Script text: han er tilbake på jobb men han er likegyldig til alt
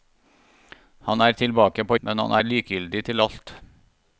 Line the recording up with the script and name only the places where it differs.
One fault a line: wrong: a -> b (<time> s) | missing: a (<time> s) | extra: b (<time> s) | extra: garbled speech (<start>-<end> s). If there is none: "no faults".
missing: jobb (2.0 s)